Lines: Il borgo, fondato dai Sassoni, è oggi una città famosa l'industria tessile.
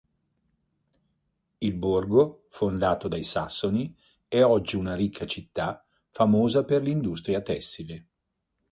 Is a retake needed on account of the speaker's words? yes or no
yes